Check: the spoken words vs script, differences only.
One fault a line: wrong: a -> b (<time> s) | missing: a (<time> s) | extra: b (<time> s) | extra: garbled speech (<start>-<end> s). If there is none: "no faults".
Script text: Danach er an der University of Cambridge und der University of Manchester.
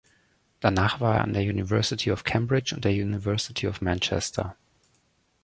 extra: war (1.0 s)